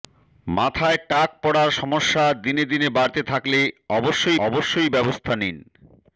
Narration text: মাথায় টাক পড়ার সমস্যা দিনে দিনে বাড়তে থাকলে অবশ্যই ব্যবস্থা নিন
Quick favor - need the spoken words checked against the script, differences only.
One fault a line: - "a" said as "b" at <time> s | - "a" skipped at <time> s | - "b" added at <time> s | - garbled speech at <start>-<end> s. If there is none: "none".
- "অবশ্যই" added at 4.5 s